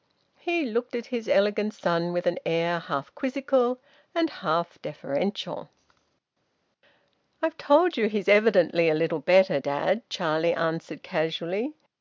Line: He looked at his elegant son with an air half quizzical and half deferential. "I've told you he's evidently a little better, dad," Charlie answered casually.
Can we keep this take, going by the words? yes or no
yes